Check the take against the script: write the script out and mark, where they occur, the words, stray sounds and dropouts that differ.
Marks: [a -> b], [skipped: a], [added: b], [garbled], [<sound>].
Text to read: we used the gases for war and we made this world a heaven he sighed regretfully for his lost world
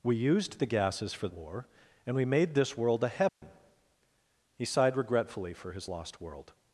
we used the gases for war and we made this world a heaven [dropout] he sighed regretfully for his lost world